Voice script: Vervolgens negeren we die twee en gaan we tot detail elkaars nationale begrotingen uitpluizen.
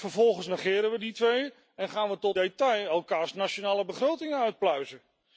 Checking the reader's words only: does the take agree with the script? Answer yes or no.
yes